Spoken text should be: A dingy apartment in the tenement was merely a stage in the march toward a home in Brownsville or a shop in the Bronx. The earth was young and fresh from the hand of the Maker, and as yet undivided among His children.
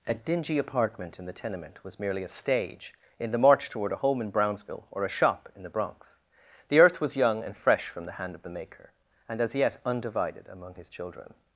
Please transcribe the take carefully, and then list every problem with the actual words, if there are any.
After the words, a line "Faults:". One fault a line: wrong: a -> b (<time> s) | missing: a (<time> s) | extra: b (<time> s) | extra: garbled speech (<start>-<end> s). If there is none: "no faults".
A dingy apartment in the tenement was merely a stage in the march toward a home in Brownsville or a shop in the Bronx. The earth was young and fresh from the hand of the Maker, and as yet undivided among His children.
Faults:
no faults